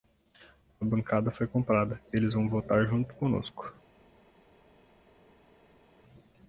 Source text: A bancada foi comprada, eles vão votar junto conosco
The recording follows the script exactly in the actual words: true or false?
true